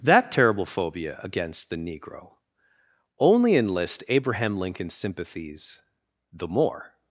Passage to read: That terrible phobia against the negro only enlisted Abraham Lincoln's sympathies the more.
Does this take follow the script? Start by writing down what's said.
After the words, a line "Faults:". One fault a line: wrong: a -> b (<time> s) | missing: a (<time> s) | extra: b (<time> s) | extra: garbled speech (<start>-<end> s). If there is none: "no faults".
That terrible phobia against the negro only enlist Abraham Lincoln's sympathies the more.
Faults:
wrong: enlisted -> enlist (3.5 s)